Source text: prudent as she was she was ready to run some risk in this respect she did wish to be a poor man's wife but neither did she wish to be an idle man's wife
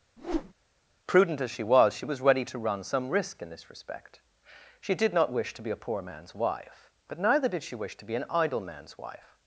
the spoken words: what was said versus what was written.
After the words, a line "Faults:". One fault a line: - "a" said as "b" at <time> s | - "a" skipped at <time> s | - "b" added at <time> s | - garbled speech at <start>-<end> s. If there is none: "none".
prudent as she was she was ready to run some risk in this respect she did not wish to be a poor man's wife but neither did she wish to be an idle man's wife
Faults:
- "not" added at 5.1 s